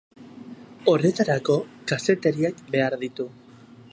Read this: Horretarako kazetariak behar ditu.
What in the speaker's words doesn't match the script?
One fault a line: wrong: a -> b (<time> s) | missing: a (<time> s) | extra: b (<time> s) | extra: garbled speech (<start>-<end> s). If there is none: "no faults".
no faults